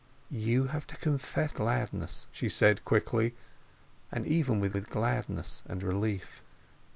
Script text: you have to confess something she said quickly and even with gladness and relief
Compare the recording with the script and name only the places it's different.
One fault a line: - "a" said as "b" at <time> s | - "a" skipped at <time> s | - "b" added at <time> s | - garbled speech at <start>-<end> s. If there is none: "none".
- "something" said as "gladness" at 1.5 s
- "with" added at 4.7 s